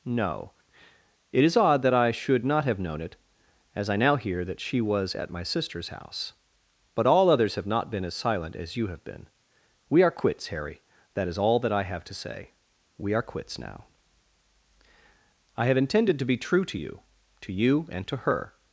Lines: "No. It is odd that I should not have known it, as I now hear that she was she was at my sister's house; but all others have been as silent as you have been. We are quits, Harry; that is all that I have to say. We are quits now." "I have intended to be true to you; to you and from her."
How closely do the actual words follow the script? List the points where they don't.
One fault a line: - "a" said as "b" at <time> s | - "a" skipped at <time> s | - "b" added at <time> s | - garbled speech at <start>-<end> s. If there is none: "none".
- "she was" skipped at 5.1 s
- "not" added at 7.7 s
- "from" said as "to" at 18.1 s